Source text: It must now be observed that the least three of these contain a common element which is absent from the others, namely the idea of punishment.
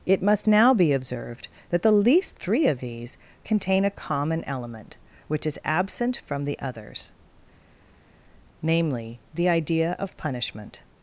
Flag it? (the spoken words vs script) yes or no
no